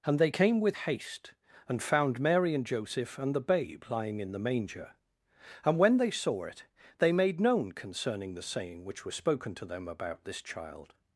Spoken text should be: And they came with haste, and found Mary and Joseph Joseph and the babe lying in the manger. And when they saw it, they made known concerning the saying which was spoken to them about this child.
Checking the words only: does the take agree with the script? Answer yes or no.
no